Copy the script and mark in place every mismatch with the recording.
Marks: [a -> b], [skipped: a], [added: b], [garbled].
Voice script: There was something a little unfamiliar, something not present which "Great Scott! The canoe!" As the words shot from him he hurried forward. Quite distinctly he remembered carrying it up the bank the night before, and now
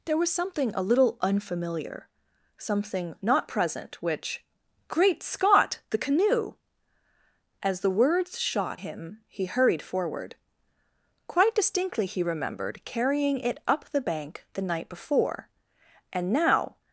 There was something a little unfamiliar, something not present which "Great Scott! The canoe!" As the words shot [skipped: from] him he hurried forward. Quite distinctly he remembered carrying it up the bank the night before, and now